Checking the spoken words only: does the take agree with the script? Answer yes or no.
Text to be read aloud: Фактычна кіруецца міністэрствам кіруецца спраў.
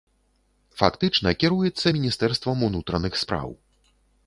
no